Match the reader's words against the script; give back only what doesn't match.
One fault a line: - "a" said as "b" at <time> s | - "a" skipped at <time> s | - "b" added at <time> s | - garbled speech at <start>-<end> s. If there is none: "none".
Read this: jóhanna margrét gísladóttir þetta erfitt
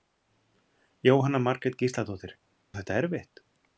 none